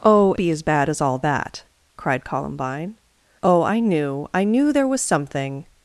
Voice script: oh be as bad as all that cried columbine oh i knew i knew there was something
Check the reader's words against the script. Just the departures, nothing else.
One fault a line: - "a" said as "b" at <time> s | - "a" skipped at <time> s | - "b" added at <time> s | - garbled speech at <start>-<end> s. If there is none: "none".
none